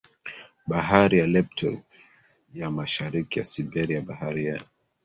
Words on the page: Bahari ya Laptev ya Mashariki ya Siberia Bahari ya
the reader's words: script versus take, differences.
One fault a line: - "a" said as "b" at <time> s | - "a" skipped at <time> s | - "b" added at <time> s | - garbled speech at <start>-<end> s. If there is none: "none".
none